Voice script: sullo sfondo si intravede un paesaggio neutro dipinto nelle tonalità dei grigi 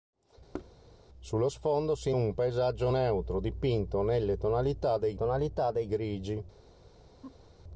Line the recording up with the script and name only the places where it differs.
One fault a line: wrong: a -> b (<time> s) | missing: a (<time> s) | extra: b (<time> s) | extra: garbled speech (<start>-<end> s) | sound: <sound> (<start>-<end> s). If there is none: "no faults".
sound: thud (0.5-0.7 s)
missing: intravede (2.1 s)
extra: tonalità dei (5.2 s)
sound: laugh (7.2-7.5 s)